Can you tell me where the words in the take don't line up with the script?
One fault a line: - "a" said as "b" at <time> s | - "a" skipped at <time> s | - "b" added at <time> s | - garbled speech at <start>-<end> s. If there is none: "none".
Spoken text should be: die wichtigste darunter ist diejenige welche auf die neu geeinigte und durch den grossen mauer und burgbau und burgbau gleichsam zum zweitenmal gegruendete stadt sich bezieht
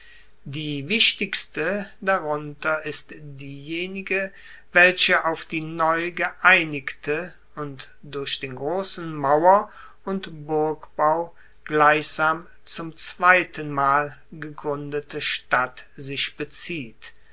- "und burgbau" skipped at 11.3 s